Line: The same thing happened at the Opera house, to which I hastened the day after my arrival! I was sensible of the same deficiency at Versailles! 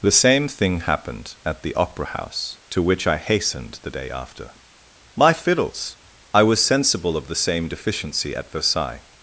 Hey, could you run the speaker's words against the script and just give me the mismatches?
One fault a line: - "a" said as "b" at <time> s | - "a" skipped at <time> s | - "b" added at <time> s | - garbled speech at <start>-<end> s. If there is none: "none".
- "arrival" said as "fiddles" at 5.3 s